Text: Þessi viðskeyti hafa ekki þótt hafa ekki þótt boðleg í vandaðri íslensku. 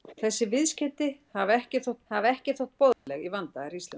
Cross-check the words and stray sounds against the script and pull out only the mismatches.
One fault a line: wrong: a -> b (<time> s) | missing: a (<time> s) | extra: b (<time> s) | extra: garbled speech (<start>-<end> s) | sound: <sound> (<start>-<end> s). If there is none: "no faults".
sound: dropout (2.9-3.1 s)